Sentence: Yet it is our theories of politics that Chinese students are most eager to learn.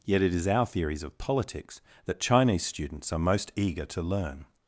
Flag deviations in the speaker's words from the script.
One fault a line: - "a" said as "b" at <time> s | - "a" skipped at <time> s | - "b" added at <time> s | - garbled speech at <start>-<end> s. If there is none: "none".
none